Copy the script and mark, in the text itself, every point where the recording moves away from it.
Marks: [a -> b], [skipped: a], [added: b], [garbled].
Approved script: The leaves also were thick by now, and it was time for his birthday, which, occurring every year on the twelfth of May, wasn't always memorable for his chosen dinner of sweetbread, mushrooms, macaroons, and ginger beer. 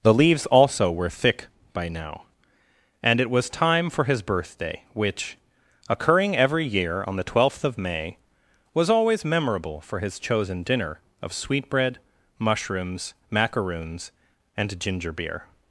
The leaves also were thick by now, and it was time for his birthday, which, occurring every year on the twelfth of May, [wasn't -> was] always memorable for his chosen dinner of sweetbread, mushrooms, macaroons, and ginger beer.